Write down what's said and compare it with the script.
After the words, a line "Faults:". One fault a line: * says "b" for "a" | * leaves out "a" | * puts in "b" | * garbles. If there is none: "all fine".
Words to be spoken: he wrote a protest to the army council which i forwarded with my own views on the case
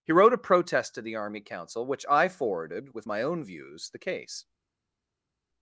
he wrote a protest to the army council which i forwarded with my own views the case
Faults:
* leaves out "on"